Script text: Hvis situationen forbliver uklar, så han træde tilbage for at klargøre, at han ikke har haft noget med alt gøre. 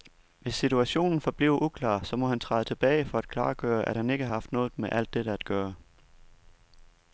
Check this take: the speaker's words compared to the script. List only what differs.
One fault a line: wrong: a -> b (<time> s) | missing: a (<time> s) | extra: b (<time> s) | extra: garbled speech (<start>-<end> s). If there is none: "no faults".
extra: må (2.1 s)
extra: dette at (5.1 s)